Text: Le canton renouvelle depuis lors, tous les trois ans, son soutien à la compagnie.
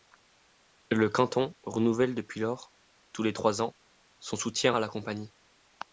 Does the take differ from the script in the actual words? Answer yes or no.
no